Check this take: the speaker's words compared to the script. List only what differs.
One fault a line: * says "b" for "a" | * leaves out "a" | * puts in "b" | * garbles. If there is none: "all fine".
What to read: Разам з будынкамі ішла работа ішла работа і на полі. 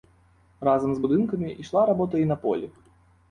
* leaves out "ішла работа"